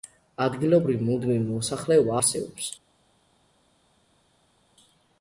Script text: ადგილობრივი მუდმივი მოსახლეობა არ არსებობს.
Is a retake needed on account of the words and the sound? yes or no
yes